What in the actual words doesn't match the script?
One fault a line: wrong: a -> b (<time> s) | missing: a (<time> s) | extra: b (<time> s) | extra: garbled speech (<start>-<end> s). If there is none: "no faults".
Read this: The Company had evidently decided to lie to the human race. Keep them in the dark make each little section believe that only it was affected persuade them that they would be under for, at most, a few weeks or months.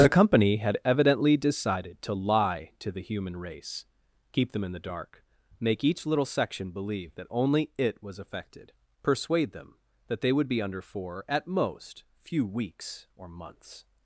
missing: a (12.0 s)